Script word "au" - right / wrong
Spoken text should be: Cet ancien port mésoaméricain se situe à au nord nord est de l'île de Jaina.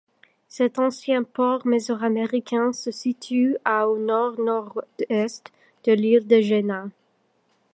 right